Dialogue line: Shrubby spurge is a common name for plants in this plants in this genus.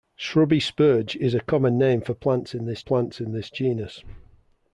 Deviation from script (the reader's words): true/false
false